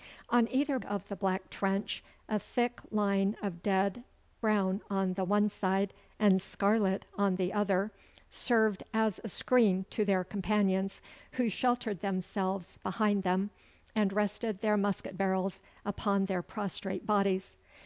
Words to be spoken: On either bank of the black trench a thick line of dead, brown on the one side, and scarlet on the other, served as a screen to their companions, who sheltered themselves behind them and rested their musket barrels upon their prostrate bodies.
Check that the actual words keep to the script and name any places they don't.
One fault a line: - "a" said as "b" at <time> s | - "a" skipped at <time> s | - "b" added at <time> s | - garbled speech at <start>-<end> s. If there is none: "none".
- "bank" skipped at 0.8 s